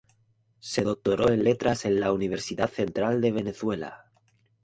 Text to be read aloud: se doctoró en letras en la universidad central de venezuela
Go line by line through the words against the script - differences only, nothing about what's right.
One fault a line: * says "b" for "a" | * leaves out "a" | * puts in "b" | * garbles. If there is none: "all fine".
all fine